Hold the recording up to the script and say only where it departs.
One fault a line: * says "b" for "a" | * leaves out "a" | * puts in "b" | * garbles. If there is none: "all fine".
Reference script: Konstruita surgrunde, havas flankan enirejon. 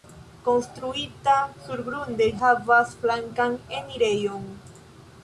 all fine